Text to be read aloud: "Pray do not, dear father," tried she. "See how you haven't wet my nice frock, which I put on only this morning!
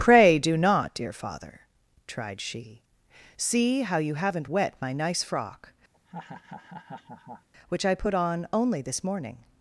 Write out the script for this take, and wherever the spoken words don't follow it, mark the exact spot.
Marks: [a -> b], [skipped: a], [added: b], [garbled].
"Pray do not, dear father," tried she. "See how you haven't wet my nice frock, which I put on only this morning!